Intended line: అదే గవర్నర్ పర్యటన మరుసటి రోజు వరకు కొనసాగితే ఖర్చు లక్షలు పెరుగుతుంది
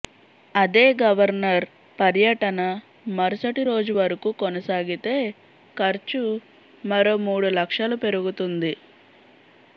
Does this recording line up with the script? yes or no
no